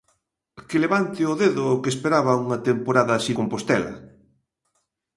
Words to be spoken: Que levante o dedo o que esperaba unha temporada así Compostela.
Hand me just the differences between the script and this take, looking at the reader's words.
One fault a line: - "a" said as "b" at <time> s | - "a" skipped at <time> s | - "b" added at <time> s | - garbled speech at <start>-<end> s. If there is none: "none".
none